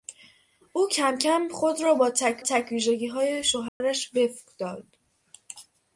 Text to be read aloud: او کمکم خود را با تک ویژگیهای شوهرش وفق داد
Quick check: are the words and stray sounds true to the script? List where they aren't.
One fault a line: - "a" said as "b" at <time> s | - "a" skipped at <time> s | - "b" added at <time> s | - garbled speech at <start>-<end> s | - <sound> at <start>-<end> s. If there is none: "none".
- "تک" added at 2.4 s
- dropout at 3.7-3.8 s